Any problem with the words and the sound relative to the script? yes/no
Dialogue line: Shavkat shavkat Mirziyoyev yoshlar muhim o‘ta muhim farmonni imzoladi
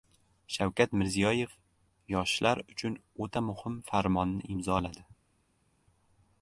yes